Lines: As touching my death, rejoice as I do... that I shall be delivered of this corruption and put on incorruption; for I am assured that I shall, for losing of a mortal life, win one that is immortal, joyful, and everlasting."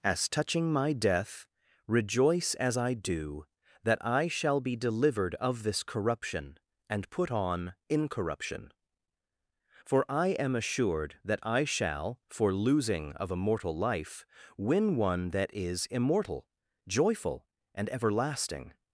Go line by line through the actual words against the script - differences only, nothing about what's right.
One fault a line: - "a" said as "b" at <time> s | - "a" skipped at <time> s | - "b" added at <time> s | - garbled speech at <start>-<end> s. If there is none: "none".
none